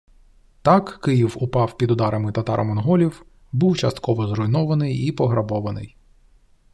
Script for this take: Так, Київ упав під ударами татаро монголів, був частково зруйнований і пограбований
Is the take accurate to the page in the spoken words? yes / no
yes